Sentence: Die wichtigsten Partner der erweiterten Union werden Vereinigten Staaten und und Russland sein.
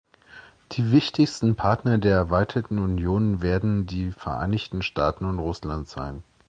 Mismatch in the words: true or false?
true